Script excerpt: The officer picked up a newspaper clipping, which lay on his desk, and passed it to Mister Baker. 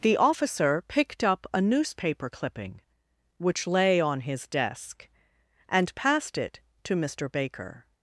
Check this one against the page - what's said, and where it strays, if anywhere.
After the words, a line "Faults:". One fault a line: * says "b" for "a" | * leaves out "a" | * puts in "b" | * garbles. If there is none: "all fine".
The officer picked up a newspaper clipping, which lay on his desk, and passed it to Mister Baker.
Faults:
all fine